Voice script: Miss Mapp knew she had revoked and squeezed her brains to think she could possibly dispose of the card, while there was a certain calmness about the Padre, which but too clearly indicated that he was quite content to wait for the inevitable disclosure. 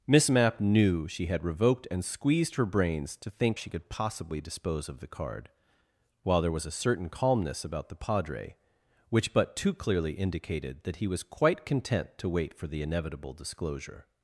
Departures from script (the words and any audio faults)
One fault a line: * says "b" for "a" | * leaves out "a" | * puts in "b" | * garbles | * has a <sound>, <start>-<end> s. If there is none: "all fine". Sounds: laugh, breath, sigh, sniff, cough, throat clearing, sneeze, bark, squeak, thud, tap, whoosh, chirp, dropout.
all fine